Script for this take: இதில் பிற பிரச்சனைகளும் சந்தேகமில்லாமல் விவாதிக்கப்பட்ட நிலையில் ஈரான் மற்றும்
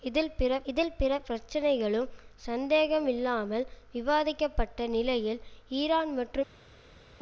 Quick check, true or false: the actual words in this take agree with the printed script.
false